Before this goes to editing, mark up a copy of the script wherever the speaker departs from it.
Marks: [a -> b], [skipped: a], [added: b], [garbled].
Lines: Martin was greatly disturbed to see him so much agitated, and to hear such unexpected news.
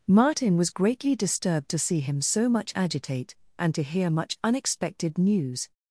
Martin was greatly disturbed to see him so much [agitated, -> agitate] and to hear [such -> much] unexpected news.